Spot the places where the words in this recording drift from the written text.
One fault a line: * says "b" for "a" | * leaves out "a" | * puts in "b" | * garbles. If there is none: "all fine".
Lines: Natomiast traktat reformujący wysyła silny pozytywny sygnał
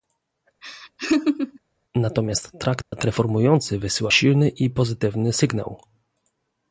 * puts in "i"